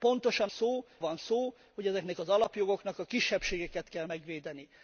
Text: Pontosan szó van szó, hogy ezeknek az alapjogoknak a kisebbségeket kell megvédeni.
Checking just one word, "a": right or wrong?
right